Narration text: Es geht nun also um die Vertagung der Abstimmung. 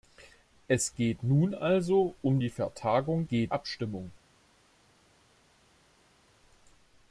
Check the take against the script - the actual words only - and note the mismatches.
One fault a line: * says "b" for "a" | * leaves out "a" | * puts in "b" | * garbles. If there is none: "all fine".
* says "geht" for "der"